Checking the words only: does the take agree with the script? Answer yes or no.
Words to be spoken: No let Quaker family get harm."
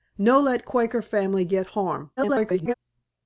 no